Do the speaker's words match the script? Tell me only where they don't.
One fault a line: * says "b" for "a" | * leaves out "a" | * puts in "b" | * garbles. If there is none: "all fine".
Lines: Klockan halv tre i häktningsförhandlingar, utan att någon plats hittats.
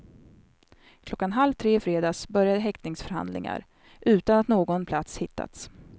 * puts in "fredags började"